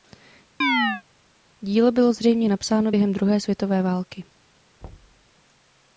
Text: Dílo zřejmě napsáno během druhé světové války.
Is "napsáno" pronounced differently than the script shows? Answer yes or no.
no